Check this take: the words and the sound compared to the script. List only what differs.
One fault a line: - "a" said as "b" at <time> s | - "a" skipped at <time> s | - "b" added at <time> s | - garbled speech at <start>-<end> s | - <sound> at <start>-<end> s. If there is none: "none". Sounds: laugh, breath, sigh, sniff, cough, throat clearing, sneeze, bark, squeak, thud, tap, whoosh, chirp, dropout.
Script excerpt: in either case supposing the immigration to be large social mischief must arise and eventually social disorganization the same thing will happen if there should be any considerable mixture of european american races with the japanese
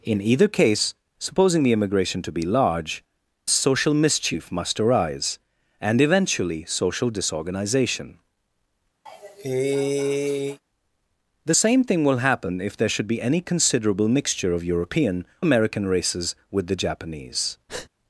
- cough at 9.1-10.6 s
- breath at 17.7-17.9 s